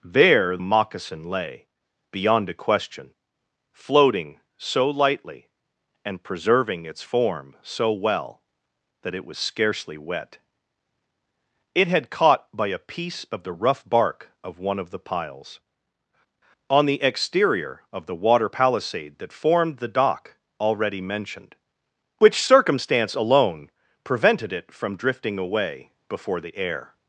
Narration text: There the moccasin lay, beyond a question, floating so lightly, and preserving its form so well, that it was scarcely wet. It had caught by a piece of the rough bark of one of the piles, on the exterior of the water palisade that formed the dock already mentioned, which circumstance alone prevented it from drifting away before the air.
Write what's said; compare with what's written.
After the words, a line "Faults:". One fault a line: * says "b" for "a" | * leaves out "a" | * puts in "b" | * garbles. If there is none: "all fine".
There moccasin lay, beyond a question, floating so lightly, and preserving its form so well, that it was scarcely wet. It had caught by a piece of the rough bark of one of the piles, on the exterior of the water palisade that formed the dock already mentioned, which circumstance alone prevented it from drifting away before the air.
Faults:
* leaves out "the"